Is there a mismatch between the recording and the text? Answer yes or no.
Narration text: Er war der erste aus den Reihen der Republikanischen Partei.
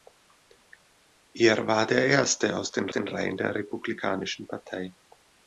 yes